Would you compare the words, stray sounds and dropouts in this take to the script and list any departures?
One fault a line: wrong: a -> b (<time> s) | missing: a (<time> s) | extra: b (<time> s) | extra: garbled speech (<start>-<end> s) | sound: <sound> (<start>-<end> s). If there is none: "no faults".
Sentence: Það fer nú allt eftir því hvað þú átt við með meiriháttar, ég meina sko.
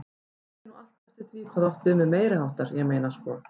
no faults